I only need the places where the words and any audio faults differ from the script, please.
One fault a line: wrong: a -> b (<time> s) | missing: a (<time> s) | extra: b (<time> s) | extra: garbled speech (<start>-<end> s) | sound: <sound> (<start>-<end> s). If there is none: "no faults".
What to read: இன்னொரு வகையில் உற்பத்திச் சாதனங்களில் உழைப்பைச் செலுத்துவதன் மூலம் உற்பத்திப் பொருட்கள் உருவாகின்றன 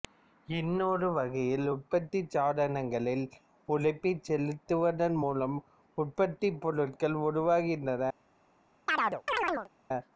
sound: chirp (8.9-9.7 s)